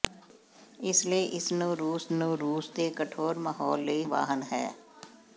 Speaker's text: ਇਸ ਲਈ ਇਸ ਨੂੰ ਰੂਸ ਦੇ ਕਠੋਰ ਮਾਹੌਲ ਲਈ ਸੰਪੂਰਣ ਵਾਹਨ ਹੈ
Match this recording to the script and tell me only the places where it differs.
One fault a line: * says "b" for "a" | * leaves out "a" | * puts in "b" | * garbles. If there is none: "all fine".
* puts in "ਨੂੰ ਰੂਸ"
* leaves out "ਸੰਪੂਰਣ"